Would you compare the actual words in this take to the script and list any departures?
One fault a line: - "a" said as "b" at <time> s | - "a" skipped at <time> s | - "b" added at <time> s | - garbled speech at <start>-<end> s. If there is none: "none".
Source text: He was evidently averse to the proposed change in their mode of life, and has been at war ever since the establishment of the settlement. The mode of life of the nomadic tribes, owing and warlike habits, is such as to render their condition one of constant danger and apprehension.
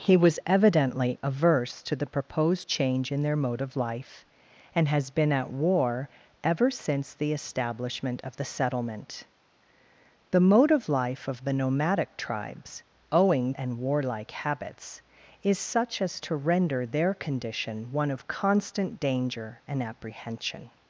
none